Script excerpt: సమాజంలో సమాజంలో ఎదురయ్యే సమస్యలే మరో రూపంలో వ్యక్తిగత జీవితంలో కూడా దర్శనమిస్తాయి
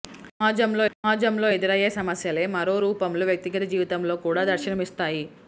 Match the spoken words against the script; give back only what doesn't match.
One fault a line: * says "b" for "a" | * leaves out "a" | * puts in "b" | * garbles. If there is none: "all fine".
all fine